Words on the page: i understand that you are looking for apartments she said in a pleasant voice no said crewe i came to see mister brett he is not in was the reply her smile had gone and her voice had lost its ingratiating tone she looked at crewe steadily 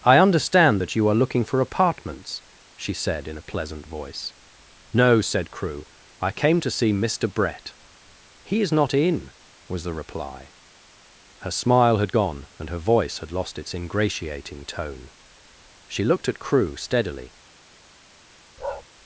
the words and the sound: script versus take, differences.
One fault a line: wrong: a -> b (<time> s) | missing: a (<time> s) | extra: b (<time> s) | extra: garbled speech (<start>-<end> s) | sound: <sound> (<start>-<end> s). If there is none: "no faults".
sound: bark (18.6-18.8 s)